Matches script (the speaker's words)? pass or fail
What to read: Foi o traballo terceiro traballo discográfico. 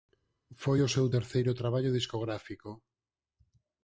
fail